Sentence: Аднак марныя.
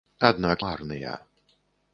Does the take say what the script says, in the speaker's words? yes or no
yes